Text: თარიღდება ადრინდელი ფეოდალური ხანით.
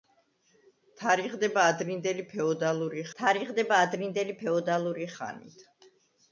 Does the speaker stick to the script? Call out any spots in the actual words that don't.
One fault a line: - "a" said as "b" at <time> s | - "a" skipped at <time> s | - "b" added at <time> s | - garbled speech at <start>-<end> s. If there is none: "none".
- "თარიღდება ადრინდელი ფეოდალური" added at 3.2 s